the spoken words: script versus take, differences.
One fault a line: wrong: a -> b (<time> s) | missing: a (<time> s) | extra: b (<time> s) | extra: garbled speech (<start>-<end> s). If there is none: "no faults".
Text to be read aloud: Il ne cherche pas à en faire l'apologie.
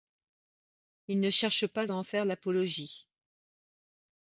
no faults